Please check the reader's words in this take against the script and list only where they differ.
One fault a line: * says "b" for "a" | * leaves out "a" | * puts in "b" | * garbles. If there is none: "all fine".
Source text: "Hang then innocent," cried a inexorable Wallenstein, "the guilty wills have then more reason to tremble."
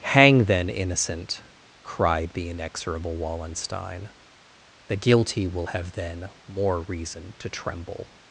* says "the" for "a"
* says "will" for "wills"